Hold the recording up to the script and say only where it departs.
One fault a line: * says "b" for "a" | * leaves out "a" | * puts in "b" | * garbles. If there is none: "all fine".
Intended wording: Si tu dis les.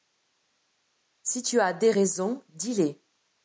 * puts in "as des raisons"